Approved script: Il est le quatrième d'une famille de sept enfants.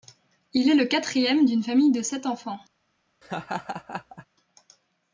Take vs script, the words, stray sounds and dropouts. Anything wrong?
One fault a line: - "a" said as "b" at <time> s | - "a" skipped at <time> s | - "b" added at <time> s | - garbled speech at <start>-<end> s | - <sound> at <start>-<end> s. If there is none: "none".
- laugh at 3.2-4.3 s